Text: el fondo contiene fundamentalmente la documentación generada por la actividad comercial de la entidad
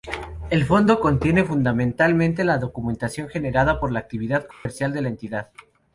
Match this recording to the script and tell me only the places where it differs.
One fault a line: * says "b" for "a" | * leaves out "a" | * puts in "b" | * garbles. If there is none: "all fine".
all fine